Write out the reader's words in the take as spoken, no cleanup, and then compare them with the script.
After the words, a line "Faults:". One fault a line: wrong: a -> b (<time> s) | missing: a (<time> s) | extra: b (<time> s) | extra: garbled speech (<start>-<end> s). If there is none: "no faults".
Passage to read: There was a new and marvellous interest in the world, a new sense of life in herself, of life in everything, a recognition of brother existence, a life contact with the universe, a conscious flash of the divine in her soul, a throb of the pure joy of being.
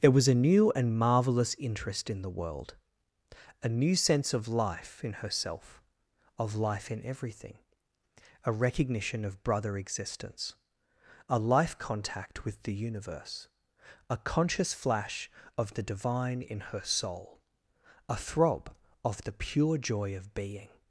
There was a new and marvellous interest in the world, a new sense of life in herself, of life in everything, a recognition of brother existence, a life contact with the universe, a conscious flash of the divine in her soul, a throb of the pure joy of being.
Faults:
no faults